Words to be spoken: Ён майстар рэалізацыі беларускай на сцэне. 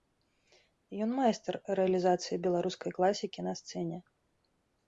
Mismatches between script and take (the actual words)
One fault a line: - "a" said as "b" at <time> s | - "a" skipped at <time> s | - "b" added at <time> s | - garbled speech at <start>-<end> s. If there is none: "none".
- "класікі" added at 3.0 s